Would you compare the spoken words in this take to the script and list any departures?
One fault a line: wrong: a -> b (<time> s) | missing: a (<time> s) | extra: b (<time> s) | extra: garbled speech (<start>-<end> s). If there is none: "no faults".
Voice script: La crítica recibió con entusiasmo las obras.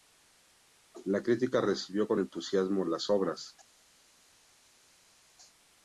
no faults